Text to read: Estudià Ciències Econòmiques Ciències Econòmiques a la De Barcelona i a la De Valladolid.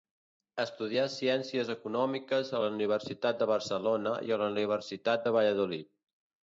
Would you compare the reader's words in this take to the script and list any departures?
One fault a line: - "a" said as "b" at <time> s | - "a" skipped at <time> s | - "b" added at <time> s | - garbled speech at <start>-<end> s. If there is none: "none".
- "Ciències Econòmiques" skipped at 2.5 s
- "Universitat" added at 2.8 s
- "Universitat" added at 4.6 s